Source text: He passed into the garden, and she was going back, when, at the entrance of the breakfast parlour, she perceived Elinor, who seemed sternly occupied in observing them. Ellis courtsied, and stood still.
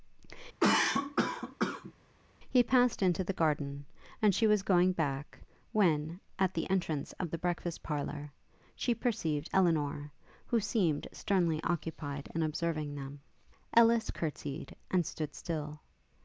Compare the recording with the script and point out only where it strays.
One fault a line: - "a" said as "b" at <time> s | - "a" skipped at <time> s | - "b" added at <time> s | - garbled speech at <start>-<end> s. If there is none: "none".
none